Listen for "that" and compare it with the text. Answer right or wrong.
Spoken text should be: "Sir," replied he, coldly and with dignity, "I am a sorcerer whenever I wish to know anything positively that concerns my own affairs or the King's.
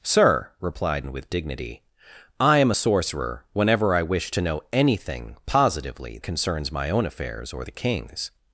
wrong